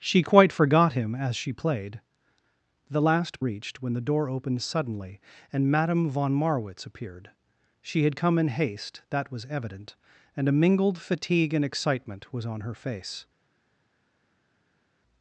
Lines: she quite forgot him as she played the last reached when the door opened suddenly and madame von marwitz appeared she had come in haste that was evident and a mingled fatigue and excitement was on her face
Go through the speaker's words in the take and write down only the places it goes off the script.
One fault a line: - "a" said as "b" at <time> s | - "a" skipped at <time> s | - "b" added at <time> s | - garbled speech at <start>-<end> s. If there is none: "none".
none